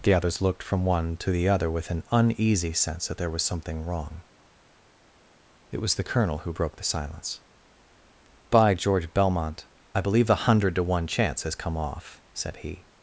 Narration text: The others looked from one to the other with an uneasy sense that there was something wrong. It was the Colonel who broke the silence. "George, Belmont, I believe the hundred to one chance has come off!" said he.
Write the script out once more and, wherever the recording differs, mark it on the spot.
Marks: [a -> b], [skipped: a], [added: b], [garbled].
The others looked from one to the other with an uneasy sense that there was something wrong. It was the Colonel who broke the silence. [added: By] "George, Belmont, I believe the hundred to one chance has come off!" said he.